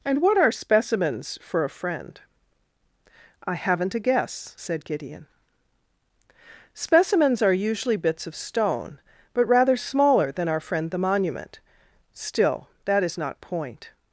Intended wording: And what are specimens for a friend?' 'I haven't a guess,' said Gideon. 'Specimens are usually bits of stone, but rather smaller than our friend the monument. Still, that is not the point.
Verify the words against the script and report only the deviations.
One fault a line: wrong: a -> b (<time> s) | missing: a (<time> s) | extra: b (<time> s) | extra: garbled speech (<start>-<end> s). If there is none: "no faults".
missing: the (13.4 s)